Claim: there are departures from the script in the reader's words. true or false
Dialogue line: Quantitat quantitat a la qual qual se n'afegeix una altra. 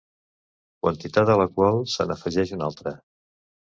true